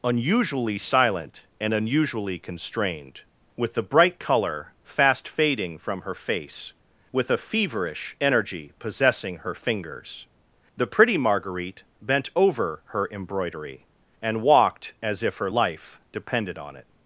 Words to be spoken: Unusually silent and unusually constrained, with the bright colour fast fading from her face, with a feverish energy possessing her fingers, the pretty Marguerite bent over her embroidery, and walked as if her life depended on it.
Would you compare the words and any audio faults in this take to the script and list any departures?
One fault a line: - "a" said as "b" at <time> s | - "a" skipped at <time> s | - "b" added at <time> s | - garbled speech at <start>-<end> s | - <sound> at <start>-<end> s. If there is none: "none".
none